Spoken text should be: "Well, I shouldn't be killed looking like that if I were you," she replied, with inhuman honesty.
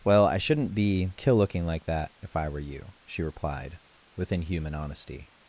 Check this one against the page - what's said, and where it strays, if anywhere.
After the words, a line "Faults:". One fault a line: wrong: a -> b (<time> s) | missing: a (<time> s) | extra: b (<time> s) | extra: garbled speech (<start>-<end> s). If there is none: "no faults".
"Well, I shouldn't be kill looking like that if I were you," she replied, with inhuman honesty.
Faults:
wrong: killed -> kill (1.2 s)